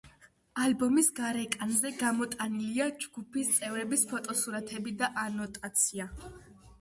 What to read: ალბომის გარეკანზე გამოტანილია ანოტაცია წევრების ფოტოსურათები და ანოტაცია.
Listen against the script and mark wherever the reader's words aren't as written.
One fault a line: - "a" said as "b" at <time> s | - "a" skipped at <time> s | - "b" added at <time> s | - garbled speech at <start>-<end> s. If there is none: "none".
- "ანოტაცია" said as "ჯგუფის" at 3.0 s